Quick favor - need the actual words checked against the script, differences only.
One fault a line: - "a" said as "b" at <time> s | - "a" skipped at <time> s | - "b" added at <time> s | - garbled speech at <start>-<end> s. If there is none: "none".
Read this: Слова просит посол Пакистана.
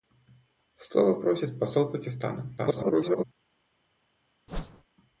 - garbled speech at 2.6-3.2 s